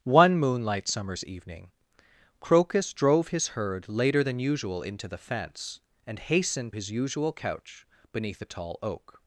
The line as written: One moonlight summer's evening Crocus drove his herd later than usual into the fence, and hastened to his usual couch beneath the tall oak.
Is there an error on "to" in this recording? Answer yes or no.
yes